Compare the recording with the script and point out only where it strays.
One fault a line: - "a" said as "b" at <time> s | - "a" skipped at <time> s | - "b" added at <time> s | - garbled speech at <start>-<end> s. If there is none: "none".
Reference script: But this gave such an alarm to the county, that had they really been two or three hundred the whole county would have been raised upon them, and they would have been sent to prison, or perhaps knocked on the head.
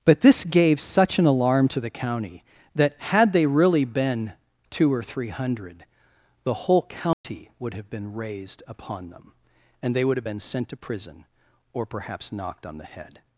none